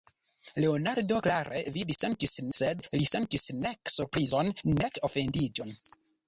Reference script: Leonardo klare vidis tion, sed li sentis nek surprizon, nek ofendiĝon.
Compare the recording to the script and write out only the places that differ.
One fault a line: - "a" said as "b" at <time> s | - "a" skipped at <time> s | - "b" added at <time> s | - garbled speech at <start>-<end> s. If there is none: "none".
- "tion" said as "sentis" at 2.0 s